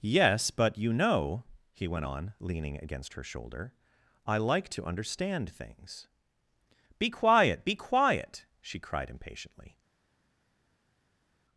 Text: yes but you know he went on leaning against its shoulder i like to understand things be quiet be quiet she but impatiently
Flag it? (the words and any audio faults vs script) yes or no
yes